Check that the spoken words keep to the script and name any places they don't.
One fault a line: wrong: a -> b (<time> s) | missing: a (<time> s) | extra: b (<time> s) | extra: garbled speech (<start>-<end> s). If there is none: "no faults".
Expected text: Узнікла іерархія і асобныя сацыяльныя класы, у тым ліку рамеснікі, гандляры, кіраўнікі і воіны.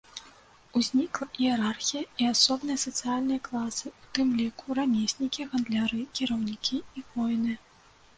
no faults